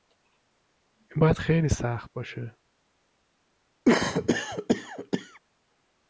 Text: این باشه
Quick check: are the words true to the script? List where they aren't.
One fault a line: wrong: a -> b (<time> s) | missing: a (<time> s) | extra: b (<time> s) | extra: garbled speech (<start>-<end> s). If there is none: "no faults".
extra: باید خیلی سخت (1.2 s)